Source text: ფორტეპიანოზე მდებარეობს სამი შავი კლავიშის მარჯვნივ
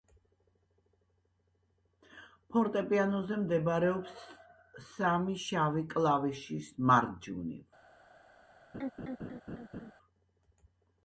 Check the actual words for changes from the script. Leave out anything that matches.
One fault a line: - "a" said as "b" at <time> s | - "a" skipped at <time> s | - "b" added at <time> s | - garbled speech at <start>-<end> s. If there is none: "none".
none